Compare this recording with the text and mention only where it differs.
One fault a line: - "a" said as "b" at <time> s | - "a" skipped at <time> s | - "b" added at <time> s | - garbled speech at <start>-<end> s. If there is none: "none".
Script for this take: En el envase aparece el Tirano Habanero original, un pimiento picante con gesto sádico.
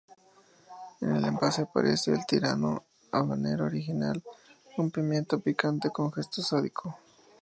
none